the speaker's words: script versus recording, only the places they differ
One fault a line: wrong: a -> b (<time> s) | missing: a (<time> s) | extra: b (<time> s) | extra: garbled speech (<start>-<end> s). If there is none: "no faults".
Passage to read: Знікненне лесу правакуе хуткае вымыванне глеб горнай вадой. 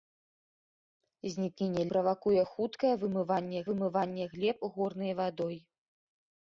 missing: лесу (1.8 s)
extra: вымыванне (3.7 s)